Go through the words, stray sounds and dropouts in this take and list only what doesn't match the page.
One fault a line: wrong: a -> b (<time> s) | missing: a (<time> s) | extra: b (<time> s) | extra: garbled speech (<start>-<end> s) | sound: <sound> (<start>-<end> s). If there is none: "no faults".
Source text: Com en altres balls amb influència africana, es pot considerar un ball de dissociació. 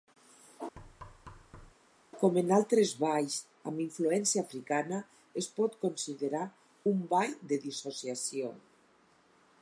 sound: thud (0.8-1.7 s)